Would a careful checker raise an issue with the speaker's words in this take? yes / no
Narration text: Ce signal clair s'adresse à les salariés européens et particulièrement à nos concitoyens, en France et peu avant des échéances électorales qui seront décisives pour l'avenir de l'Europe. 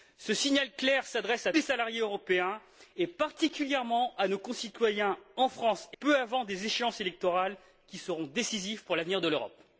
no